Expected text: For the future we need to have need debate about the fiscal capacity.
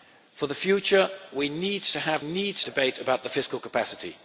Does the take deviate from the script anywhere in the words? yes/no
no